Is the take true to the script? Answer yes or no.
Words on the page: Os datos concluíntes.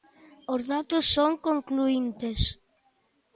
no